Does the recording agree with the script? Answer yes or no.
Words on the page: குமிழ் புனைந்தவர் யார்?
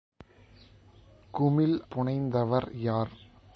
yes